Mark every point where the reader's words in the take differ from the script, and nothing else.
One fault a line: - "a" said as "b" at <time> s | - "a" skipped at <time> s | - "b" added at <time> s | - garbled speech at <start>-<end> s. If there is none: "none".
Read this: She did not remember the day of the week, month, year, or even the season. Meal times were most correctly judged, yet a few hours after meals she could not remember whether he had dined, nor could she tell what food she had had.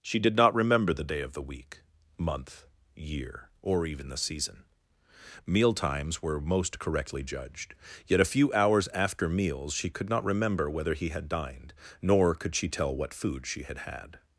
none